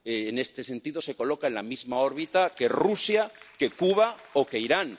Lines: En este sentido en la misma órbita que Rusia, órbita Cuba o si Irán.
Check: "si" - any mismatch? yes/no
yes